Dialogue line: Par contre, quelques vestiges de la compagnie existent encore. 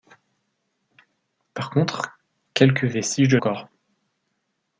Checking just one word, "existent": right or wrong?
wrong